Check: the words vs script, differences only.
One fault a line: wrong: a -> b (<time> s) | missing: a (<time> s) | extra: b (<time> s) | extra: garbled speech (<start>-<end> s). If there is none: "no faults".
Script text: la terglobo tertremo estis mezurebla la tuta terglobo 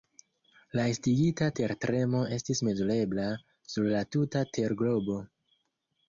wrong: terglobo -> estigita (0.9 s)
extra: sur (3.7 s)